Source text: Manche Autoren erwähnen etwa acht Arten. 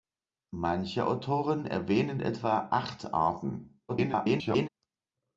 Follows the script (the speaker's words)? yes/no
no